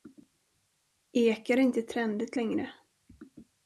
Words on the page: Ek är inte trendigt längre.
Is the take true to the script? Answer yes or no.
yes